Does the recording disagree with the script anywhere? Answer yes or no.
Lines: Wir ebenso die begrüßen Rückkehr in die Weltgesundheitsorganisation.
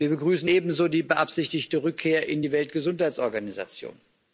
yes